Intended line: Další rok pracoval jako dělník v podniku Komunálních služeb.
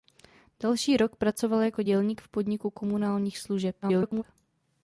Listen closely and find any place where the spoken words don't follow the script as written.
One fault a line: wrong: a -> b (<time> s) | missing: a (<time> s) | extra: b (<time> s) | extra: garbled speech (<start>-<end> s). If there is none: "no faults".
extra: garbled speech (3.8-4.2 s)